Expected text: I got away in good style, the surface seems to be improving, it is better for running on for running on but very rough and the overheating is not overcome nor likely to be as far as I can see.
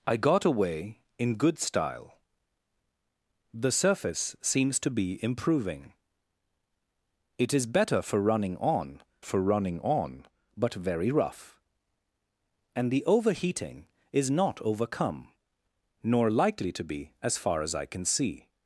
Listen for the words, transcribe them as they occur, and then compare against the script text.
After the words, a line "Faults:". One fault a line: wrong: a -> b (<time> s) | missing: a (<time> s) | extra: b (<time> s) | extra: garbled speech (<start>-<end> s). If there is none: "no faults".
I got away in good style, the surface seems to be improving, it is better for running on for running on but very rough and the overheating is not overcome nor likely to be as far as I can see.
Faults:
no faults